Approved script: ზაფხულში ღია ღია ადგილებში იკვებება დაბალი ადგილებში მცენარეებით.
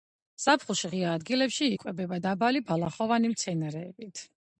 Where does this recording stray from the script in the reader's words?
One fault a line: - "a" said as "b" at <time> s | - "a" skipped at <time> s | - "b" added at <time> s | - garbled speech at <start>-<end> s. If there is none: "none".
- "ღია" skipped at 1.1 s
- "ადგილებში" said as "ბალახოვანი" at 2.7 s